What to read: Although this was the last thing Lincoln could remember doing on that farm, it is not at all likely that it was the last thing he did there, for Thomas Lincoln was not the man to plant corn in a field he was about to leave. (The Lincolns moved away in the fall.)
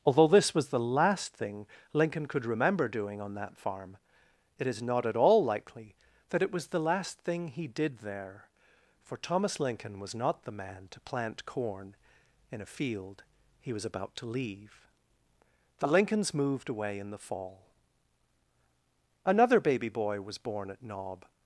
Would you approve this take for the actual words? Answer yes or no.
no